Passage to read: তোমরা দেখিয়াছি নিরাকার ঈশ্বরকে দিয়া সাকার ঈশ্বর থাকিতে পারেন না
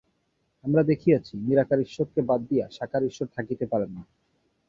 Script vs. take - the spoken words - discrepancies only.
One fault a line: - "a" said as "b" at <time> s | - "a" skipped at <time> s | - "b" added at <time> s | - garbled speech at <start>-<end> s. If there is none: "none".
- "তোমরা" said as "আমরা" at 0.6 s
- "বাদ" added at 2.2 s